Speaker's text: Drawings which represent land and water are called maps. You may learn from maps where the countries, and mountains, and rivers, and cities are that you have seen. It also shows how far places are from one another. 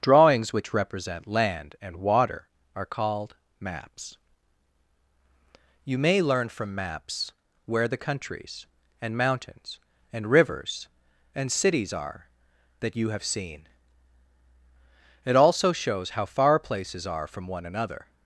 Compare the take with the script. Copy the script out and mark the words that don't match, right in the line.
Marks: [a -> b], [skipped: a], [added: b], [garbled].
Drawings which represent land and water are called maps. You may learn from maps where the countries, and mountains, and rivers, and cities are that you have seen. It also shows how far places are from one another.